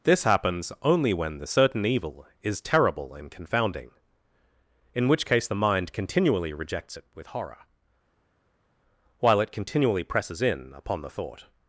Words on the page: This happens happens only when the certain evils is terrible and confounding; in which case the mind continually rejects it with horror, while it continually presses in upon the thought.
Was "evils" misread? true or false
true